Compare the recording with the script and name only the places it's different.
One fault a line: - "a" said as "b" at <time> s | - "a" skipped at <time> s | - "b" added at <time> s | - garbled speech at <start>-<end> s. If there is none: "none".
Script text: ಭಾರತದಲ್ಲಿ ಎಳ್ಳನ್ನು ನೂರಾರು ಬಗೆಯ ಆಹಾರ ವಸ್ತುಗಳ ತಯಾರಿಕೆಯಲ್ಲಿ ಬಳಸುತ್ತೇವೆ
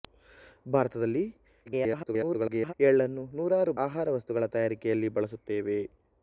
- garbled speech at 1.7-2.7 s
- "ಬಗೆಯ" skipped at 3.7 s